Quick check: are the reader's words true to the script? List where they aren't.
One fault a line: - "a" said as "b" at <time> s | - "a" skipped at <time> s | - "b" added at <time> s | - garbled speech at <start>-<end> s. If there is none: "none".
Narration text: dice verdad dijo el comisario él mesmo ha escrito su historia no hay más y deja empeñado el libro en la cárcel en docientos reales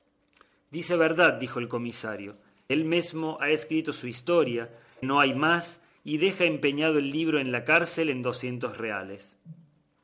none